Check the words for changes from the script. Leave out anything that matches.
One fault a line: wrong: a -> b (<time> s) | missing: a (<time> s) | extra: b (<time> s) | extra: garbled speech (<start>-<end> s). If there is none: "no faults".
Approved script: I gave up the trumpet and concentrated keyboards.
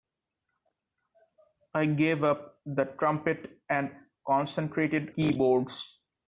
no faults